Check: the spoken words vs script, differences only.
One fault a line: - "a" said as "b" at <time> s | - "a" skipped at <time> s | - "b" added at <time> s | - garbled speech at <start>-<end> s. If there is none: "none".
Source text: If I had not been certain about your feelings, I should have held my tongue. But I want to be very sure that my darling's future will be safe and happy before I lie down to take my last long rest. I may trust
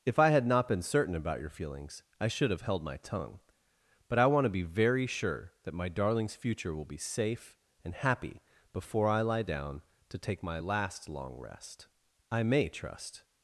none